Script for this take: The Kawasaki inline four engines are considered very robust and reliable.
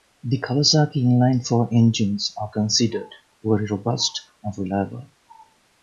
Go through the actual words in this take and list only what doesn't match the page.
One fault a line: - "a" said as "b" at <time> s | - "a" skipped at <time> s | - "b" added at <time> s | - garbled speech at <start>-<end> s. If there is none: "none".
none